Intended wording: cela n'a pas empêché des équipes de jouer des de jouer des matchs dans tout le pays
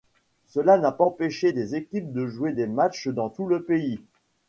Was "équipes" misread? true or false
false